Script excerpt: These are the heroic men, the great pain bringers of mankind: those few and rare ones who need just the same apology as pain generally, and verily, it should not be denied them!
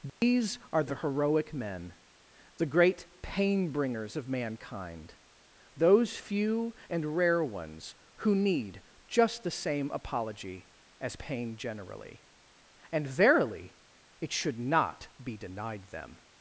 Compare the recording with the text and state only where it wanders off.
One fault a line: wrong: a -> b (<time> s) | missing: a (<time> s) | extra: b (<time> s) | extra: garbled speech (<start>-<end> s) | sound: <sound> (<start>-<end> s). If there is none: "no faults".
sound: dropout (0.1-0.2 s)